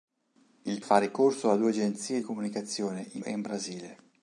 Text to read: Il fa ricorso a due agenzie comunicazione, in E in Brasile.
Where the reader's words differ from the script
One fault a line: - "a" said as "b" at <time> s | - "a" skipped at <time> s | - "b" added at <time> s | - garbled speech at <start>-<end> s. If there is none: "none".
none